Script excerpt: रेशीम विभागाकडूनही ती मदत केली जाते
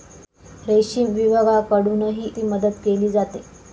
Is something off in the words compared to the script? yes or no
no